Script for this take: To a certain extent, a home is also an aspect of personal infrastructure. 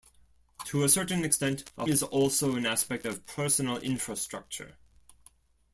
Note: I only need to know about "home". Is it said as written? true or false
false